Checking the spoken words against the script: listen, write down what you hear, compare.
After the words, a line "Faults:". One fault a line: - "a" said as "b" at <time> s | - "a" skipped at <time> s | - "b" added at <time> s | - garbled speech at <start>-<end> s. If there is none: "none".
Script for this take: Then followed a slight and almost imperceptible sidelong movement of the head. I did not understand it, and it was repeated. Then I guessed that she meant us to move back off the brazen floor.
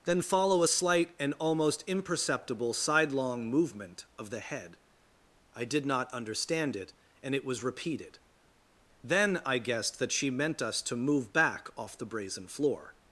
Then follow a slight and almost imperceptible sidelong movement of the head. I did not understand it, and it was repeated. Then I guessed that she meant us to move back off the brazen floor.
Faults:
- "followed" said as "follow" at 0.2 s